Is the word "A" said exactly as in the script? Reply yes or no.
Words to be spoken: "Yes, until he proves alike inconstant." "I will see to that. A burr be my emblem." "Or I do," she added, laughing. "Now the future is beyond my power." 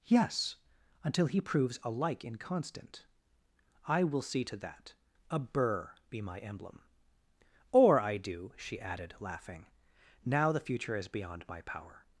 yes